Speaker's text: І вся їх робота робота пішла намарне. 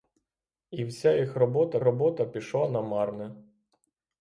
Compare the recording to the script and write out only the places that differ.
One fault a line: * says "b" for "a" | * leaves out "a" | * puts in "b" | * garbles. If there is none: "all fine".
all fine